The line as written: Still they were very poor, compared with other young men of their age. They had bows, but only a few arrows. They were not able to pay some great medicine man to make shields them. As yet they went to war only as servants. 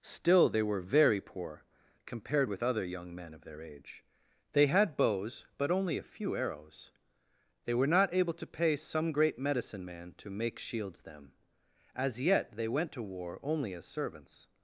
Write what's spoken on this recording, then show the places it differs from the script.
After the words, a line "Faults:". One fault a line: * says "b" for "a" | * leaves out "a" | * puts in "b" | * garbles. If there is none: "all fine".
Still they were very poor, compared with other young men of their age. They had bows, but only a few arrows. They were not able to pay some great medicine man to make shields them. As yet they went to war only as servants.
Faults:
all fine